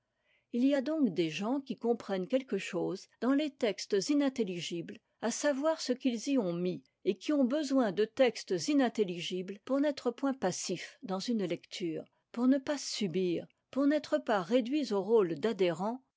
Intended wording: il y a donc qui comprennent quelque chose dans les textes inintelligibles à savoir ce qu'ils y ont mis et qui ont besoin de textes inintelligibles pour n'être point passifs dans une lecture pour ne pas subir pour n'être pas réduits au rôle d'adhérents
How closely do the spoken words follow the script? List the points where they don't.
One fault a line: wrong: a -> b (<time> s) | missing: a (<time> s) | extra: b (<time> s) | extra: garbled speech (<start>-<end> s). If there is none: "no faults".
extra: des gens (1.1 s)